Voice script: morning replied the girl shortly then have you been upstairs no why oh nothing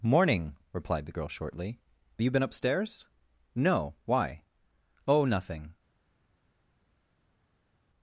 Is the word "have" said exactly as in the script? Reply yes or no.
no